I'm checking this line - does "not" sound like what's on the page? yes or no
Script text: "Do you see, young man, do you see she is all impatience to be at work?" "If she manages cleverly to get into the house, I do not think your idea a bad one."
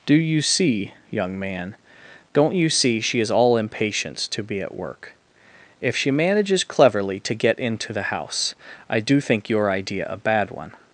no